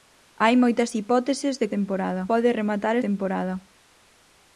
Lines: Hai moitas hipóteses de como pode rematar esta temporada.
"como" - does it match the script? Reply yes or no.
no